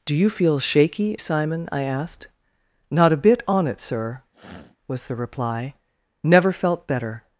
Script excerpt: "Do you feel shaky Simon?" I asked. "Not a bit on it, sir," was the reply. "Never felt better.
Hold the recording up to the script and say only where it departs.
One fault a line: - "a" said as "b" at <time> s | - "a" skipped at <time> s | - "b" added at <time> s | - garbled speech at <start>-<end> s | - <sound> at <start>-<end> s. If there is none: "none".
- sniff at 4.3-4.8 s